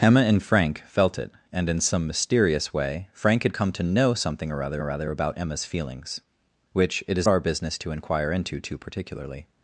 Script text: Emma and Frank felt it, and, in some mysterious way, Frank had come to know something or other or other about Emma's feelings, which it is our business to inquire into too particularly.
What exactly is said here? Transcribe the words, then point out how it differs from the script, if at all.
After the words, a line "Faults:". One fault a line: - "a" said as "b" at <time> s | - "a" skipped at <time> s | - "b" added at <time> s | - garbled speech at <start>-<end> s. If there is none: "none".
Emma and Frank felt it, and, in some mysterious way, Frank had come to know something or other or other about Emma's feelings, which it is our business to inquire into too particularly.
Faults:
none